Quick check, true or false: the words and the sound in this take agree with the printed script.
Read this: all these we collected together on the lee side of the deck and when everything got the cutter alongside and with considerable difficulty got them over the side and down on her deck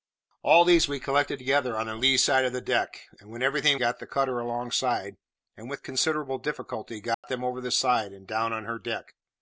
false